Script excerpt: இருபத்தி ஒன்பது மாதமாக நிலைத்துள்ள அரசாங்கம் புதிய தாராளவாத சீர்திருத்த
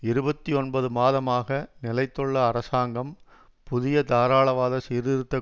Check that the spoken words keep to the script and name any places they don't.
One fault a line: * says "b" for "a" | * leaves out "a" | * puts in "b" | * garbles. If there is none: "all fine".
all fine